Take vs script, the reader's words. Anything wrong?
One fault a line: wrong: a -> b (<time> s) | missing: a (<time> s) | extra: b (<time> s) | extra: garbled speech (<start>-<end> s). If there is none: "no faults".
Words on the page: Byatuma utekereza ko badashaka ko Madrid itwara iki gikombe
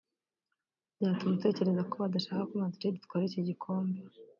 no faults